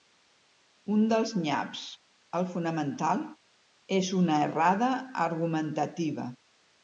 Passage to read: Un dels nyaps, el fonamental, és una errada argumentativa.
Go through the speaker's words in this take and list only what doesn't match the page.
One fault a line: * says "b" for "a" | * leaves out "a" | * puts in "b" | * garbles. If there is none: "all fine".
all fine